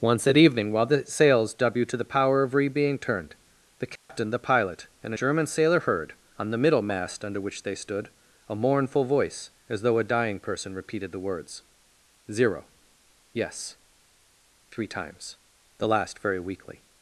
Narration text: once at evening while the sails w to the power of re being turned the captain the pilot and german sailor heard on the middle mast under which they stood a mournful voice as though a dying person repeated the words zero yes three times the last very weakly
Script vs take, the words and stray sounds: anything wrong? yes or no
yes